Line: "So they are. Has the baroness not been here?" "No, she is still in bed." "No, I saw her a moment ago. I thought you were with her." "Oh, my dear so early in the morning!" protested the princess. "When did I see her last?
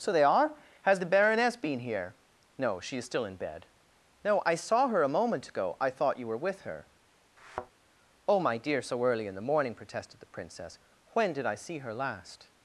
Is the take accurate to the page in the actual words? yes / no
no